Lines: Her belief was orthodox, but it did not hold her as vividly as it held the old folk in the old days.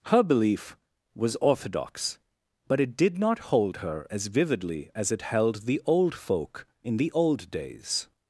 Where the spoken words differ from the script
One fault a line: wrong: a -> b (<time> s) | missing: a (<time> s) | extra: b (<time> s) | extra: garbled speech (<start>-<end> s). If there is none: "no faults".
no faults